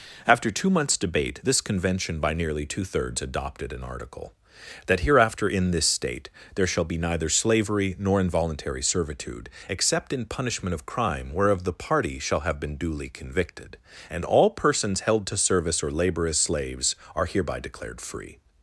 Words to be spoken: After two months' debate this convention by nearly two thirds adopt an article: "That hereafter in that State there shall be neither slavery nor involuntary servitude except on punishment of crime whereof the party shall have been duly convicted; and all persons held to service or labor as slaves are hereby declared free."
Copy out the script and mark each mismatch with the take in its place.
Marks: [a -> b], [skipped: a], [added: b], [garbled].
After two months' debate this convention by nearly two thirds [adopt -> adopted] an article: "That hereafter in [that -> this] State there shall be neither slavery nor involuntary servitude except [on -> in] punishment of crime whereof the party shall have been duly convicted; and all persons held to service or labor as slaves are hereby declared free."